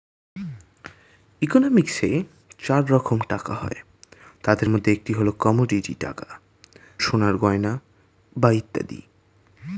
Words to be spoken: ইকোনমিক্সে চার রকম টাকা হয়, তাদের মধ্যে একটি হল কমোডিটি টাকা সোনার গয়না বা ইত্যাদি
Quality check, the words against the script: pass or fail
pass